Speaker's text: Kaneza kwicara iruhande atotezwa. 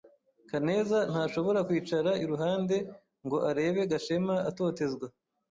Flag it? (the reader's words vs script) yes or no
yes